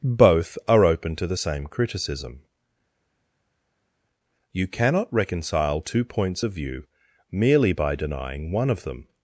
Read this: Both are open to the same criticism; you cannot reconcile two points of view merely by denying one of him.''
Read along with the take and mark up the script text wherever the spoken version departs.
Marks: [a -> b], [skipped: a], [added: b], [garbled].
Both are open to the same criticism; you cannot reconcile two points of view merely by denying one of [him.'' -> them]